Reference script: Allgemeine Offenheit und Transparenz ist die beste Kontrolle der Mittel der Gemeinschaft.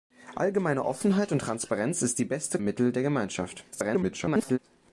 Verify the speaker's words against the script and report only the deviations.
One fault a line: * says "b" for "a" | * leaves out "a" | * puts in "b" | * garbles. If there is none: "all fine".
* leaves out "Kontrolle der"
* garbles